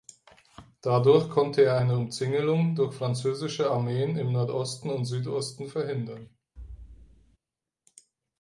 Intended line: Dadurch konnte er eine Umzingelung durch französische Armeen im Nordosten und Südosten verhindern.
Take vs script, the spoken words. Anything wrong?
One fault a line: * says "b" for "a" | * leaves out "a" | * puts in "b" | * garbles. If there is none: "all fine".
all fine